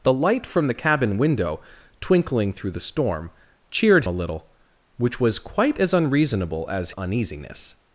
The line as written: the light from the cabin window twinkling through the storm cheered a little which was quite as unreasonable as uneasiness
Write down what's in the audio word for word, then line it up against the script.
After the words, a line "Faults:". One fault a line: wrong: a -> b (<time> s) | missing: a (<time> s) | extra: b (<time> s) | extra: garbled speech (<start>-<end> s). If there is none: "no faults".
the light from the cabin window twinkling through the storm cheered a little which was quite as unreasonable as uneasiness
Faults:
no faults